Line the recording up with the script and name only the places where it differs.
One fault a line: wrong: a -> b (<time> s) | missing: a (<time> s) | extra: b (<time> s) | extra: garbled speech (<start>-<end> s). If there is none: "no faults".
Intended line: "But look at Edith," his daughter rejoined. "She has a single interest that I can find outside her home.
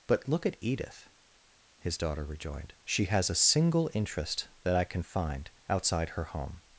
no faults